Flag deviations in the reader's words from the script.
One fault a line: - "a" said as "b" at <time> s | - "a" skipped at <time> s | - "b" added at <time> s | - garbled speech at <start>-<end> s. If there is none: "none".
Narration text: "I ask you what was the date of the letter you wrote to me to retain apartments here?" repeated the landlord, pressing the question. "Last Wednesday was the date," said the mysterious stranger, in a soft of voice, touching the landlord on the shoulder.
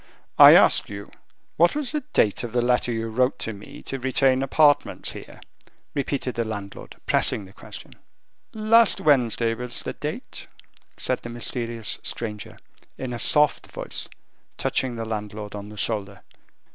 none